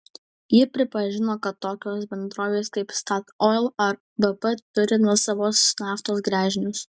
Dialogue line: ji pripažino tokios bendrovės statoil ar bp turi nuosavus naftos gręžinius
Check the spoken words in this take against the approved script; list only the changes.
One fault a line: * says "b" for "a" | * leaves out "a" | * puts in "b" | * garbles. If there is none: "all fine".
* puts in "kad"
* puts in "kaip"